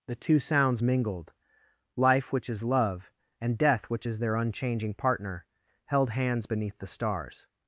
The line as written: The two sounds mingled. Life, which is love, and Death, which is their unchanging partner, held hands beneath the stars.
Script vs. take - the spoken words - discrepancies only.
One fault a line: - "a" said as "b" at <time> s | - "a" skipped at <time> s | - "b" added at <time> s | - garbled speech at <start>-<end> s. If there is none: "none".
none